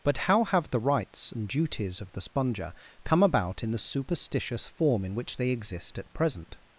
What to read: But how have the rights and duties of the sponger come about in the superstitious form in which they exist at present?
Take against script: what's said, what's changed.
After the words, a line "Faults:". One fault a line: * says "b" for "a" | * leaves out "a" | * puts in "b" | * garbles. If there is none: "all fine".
But how have the rights and duties of the sponger come about in the superstitious form in which they exist at present?
Faults:
all fine